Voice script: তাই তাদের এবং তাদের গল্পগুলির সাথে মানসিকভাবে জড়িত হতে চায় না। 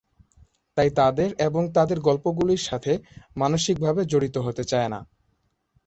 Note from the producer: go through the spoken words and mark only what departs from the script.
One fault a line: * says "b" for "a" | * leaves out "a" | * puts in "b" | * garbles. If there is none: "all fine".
all fine